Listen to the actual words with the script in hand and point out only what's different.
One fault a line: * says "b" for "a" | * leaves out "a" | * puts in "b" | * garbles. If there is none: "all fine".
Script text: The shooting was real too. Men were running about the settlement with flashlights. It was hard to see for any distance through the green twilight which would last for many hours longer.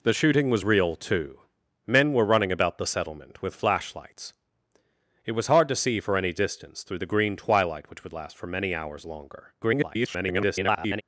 * garbles